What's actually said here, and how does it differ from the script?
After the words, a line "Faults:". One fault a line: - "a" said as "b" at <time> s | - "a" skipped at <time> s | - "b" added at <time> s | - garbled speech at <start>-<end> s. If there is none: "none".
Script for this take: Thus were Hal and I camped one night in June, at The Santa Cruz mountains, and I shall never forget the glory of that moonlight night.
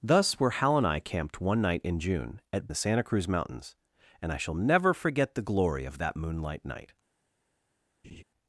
Thus were Hal and I camped one night in June, at The Santa Cruz mountains, and I shall never forget the glory of that moonlight night.
Faults:
none